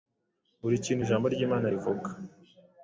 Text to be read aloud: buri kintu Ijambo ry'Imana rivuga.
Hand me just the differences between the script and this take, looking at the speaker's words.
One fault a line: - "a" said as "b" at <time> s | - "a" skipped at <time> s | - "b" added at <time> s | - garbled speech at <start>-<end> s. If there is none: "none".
none